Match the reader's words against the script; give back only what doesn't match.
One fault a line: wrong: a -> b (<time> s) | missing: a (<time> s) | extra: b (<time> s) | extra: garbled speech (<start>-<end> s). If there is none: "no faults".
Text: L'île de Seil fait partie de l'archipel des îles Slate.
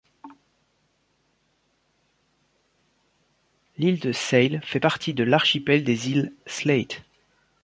no faults